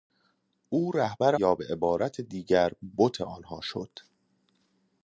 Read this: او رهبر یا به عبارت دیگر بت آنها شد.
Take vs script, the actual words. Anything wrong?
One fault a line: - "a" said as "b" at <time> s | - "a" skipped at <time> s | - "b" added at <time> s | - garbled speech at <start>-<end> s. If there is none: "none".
none